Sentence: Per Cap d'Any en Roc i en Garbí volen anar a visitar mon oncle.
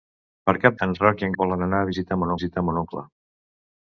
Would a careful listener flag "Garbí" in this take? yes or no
yes